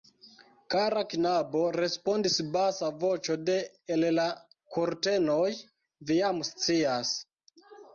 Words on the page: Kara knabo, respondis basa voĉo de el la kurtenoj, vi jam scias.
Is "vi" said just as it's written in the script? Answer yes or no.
yes